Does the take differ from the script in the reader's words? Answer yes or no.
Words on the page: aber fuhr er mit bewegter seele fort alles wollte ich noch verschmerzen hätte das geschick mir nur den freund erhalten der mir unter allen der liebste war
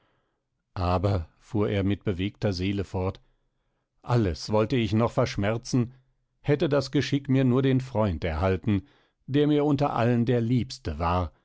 no